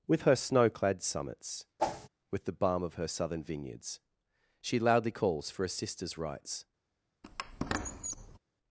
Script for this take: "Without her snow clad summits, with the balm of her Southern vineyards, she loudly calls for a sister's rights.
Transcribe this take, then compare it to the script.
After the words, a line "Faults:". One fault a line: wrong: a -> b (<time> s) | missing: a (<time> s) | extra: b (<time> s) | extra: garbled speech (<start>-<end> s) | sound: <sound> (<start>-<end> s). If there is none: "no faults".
"With her snow clad summits, with the balm of her Southern vineyards, she loudly calls for a sister's rights.
Faults:
wrong: Without -> With (0.1 s)
sound: whoosh (1.8-2.1 s)
sound: squeak (7.2-8.4 s)